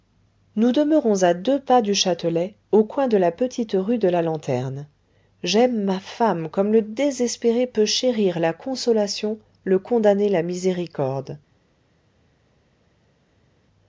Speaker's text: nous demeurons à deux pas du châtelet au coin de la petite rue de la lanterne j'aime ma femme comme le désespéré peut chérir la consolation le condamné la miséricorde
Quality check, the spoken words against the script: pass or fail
pass